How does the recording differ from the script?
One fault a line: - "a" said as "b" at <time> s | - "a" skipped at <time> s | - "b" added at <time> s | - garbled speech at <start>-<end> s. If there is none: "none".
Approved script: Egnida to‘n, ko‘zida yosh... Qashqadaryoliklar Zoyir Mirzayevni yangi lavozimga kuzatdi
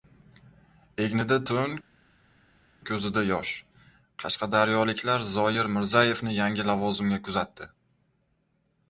none